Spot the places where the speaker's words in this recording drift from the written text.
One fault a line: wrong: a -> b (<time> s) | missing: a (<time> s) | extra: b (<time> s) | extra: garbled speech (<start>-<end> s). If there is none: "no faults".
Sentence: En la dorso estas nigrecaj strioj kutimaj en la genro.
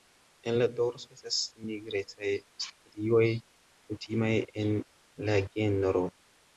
no faults